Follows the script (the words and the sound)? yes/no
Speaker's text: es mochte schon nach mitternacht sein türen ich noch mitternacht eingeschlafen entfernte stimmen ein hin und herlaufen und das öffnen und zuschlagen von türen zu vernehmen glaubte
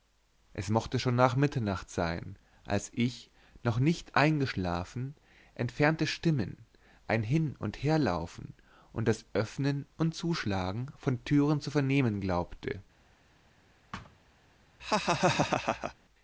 no